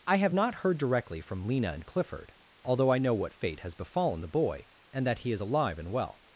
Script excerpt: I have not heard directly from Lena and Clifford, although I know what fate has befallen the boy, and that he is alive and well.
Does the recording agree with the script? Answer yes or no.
yes